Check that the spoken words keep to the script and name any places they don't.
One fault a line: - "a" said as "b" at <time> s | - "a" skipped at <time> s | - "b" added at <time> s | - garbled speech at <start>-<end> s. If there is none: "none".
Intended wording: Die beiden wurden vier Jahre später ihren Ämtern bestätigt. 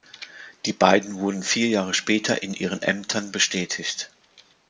- "in" added at 2.4 s